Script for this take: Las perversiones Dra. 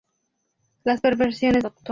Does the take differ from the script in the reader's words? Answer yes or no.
no